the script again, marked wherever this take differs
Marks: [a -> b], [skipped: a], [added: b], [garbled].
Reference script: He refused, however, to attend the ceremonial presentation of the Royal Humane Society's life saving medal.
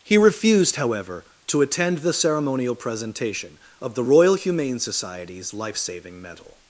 He refused, however, to attend the ceremonial presentation of the Royal Humane Society's life saving medal.